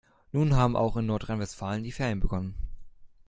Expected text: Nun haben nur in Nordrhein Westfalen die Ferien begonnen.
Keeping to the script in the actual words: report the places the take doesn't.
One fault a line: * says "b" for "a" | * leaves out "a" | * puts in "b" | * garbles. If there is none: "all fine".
* says "auch" for "nur"